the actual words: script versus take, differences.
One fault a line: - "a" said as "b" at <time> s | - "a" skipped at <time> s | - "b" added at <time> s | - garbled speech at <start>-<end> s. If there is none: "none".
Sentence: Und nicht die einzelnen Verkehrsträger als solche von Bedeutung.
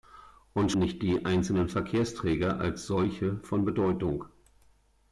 none